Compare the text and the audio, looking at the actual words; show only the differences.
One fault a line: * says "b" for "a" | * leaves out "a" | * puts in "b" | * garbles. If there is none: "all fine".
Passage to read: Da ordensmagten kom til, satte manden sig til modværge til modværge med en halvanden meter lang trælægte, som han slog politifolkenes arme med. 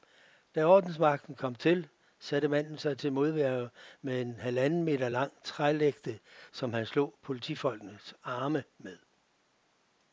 * leaves out "til modværge"